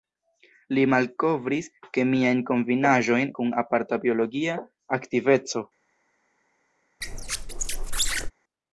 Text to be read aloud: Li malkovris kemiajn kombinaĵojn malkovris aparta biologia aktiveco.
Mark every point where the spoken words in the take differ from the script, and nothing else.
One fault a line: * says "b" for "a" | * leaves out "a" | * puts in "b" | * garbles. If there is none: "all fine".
* says "kun" for "malkovris"